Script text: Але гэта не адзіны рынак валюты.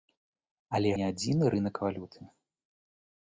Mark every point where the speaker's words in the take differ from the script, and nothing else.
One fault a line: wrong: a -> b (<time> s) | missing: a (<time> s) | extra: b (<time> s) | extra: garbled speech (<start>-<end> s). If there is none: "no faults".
missing: гэта (0.9 s)